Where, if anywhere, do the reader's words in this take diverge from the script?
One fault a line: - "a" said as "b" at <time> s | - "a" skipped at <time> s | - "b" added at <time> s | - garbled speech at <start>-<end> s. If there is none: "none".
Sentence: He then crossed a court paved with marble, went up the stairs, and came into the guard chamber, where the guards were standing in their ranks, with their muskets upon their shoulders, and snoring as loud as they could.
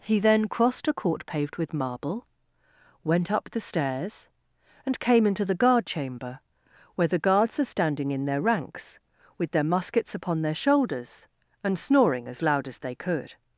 - "were" said as "are" at 7.6 s